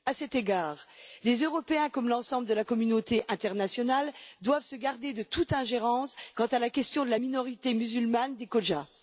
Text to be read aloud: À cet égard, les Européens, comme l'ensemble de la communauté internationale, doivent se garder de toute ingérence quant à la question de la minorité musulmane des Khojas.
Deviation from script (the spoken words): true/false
false